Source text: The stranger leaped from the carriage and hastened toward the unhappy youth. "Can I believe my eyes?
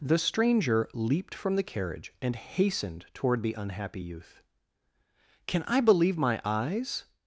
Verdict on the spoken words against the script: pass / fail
pass